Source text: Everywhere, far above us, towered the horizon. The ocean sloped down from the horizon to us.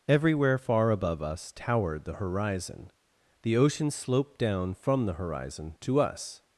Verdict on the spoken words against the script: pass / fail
pass